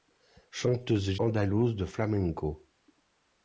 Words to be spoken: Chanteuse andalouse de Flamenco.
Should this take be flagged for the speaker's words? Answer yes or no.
no